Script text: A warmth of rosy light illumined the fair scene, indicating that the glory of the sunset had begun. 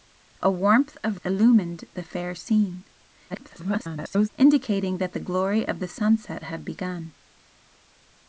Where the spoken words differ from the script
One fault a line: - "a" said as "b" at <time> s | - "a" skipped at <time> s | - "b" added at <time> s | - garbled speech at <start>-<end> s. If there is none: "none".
- "rosy light" skipped at 1.2 s
- garbled speech at 3.3-4.3 s